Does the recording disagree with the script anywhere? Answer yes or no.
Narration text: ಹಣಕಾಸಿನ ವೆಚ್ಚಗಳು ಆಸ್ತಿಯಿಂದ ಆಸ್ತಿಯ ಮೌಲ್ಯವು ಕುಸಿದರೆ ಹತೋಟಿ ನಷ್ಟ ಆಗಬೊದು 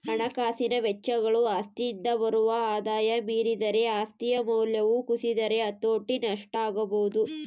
yes